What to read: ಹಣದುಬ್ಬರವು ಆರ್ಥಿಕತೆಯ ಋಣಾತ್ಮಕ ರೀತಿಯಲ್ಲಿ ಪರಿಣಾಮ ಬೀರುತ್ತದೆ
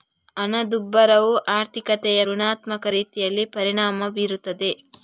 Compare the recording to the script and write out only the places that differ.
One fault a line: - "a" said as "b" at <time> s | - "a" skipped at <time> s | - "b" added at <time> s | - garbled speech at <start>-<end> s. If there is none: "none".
none